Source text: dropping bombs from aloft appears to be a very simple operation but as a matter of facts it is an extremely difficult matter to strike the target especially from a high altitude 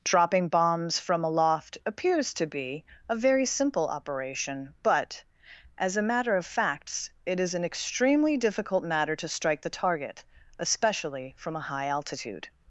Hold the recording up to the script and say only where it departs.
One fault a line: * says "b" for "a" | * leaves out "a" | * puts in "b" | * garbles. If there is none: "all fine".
all fine